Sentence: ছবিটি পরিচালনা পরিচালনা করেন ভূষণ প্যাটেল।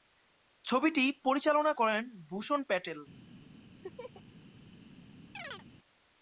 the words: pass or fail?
fail